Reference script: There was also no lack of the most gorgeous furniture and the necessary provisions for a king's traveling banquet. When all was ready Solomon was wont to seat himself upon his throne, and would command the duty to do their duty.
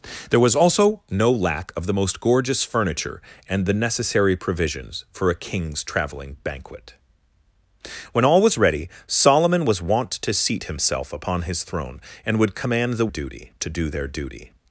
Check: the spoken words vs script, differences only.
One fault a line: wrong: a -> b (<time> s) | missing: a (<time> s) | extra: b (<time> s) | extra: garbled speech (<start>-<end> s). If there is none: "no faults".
no faults